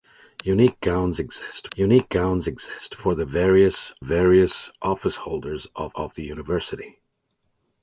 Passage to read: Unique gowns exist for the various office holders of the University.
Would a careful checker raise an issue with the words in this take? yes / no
yes